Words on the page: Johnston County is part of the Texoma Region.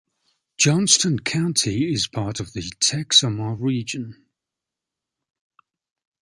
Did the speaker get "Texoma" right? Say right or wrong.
right